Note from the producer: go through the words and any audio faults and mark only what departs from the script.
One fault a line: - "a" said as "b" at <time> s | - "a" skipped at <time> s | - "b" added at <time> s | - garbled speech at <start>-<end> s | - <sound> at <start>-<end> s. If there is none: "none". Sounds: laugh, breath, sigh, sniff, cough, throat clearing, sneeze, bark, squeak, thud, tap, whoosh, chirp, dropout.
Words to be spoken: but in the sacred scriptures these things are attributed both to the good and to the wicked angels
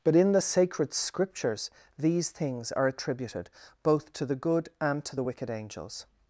none